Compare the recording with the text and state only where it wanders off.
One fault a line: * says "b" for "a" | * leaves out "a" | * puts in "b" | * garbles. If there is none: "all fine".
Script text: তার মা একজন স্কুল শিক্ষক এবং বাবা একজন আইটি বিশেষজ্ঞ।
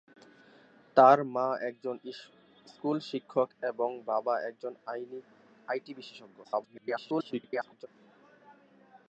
* garbles